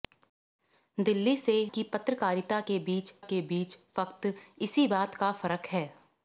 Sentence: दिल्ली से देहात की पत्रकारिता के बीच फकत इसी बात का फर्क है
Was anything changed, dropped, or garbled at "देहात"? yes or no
yes